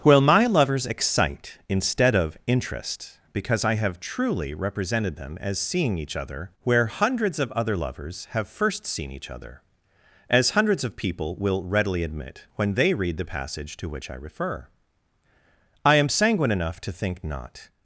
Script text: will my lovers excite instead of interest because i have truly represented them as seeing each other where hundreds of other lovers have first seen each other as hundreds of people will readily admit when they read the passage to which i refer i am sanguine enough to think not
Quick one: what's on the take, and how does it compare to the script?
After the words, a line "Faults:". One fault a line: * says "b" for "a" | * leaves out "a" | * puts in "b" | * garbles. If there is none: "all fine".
will my lovers excite instead of interest because i have truly represented them as seeing each other where hundreds of other lovers have first seen each other as hundreds of people will readily admit when they read the passage to which i refer i am sanguine enough to think not
Faults:
all fine